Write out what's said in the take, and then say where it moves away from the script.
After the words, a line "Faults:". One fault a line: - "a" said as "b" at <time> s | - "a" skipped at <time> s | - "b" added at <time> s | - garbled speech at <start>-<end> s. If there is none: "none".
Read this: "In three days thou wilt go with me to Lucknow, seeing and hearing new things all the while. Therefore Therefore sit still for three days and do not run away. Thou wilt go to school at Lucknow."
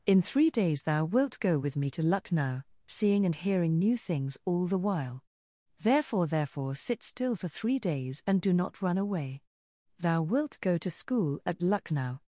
"In three days thou wilt go with me to Lucknow, seeing and hearing new things all the while. Therefore Therefore sit still for three days and do not run away. Thou wilt go to school at Lucknow."
Faults:
none